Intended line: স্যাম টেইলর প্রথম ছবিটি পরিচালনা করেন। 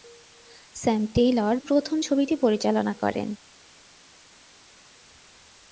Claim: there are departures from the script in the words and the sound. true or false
false